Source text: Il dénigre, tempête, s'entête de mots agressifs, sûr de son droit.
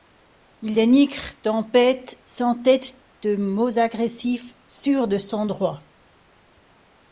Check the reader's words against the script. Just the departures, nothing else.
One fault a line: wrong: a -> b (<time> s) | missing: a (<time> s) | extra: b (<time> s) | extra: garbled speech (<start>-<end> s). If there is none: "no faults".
no faults